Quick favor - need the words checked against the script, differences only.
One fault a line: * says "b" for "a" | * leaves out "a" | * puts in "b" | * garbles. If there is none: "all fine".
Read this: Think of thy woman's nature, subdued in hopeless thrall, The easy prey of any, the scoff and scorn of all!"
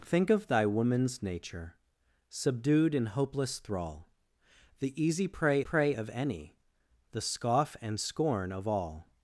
* puts in "prey"